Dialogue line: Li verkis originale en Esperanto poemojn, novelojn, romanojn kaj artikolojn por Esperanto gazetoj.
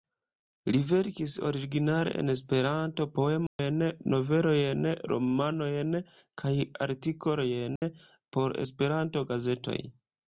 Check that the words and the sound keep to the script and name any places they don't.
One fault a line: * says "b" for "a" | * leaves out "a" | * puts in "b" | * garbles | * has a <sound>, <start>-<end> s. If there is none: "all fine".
* has a dropout, 3.5-3.6 s
* has a dropout, 7.8-7.8 s